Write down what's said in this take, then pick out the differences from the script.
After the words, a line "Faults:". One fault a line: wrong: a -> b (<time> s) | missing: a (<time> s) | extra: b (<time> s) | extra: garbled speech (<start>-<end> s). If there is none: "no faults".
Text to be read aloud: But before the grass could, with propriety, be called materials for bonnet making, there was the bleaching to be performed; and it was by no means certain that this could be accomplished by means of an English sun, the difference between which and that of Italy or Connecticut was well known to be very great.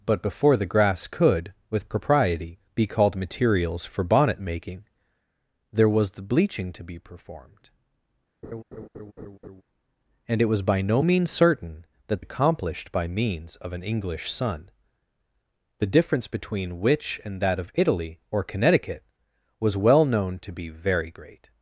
But before the grass could, with propriety, be called materials for bonnet making, there was the bleaching to be performed; and it was by no means certain that accomplished by means of an English sun, the difference between which and that of Italy or Connecticut was well known to be very great.
Faults:
missing: this could be (12.2 s)